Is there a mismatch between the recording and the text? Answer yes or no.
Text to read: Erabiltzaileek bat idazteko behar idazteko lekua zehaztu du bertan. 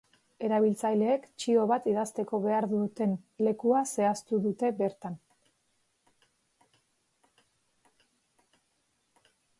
yes